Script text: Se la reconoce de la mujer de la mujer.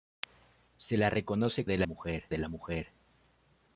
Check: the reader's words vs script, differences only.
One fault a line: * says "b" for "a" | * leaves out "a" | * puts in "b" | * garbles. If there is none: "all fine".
all fine